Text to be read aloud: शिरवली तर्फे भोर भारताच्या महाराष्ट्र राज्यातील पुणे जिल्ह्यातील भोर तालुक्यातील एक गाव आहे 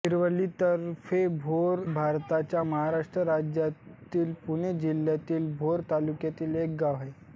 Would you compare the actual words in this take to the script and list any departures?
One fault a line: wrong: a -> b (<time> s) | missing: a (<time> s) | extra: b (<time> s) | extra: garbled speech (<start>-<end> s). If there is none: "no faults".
no faults